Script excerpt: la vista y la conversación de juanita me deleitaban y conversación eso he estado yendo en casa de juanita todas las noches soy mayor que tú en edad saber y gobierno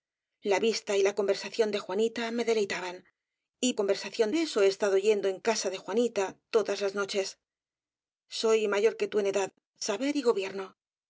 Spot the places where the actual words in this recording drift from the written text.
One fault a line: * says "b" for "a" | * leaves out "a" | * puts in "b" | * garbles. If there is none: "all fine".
all fine